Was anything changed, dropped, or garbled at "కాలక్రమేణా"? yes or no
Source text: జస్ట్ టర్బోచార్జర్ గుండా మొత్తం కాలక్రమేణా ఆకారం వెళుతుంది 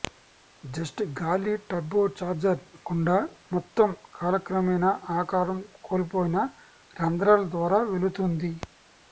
no